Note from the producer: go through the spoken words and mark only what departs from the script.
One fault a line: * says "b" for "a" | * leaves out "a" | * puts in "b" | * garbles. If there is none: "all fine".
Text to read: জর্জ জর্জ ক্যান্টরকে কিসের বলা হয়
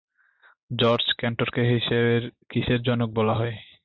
* leaves out "জর্জ"
* puts in "জনক"